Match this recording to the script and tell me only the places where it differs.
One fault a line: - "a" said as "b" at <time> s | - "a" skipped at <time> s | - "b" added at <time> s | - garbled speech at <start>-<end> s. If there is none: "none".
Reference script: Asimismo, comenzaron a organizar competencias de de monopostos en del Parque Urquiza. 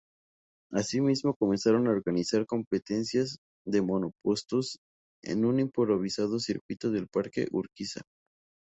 - "de" skipped at 3.8 s
- "un improvisado circuito" added at 5.5 s